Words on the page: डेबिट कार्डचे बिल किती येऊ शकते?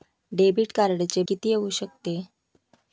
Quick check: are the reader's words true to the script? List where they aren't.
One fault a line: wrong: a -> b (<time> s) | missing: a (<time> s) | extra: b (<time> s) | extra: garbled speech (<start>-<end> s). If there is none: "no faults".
missing: बिल (1.2 s)